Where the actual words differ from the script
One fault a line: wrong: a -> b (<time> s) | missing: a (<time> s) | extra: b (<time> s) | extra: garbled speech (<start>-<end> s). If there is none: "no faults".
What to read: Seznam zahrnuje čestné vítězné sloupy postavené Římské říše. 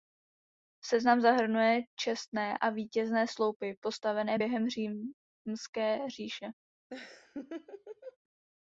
extra: a (2.6 s)
extra: během (4.3 s)